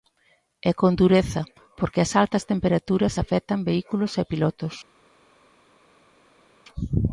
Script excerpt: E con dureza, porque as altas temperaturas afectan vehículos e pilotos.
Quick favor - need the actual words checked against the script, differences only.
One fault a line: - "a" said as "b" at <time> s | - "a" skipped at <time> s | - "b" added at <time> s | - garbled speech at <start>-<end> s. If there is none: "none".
none